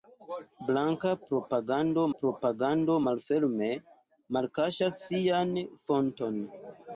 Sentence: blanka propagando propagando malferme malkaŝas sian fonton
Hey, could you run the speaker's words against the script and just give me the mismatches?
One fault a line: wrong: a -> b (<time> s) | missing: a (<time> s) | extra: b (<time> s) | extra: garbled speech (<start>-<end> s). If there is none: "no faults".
no faults